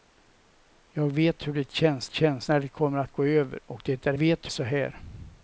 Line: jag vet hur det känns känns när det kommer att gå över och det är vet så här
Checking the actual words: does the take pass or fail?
pass